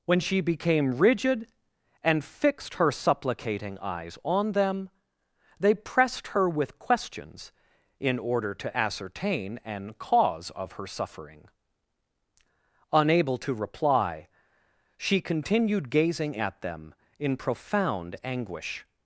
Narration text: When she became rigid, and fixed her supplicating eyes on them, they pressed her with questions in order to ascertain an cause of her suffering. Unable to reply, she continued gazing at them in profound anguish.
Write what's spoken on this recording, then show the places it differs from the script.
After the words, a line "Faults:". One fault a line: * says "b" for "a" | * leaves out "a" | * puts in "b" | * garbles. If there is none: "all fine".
When she became rigid, and fixed her supplicating eyes on them, they pressed her with questions in order to ascertain an cause of her suffering. Unable to reply, she continued gazing at them in profound anguish.
Faults:
all fine